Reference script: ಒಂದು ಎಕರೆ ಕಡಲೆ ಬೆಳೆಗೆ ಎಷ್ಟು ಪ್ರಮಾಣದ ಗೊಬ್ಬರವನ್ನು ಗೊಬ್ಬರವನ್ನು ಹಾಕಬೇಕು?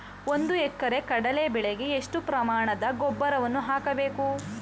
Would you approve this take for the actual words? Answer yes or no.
no